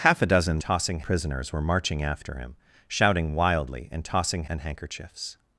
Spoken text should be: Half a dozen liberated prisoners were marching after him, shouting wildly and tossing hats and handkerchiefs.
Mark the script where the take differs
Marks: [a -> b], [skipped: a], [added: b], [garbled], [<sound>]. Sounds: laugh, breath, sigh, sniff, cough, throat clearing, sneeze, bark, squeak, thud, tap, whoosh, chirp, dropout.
Half a dozen [liberated -> tossing] prisoners were marching after him, shouting wildly and tossing [skipped: hats] and handkerchiefs.